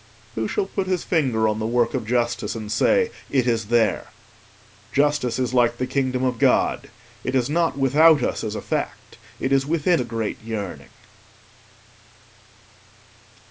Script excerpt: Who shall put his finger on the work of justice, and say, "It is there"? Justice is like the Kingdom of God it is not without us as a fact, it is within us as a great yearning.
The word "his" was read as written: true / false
true